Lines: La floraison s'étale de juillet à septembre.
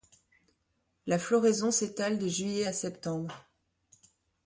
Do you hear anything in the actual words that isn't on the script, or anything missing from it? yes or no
no